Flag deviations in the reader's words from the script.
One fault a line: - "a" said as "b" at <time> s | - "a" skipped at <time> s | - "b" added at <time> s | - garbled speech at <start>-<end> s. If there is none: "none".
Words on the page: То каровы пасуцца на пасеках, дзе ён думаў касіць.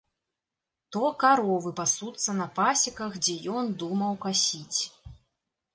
none